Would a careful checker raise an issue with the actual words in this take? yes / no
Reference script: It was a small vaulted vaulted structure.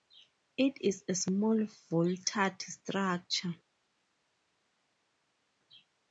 yes